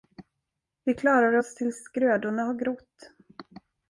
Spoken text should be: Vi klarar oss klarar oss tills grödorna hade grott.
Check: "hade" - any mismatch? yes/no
yes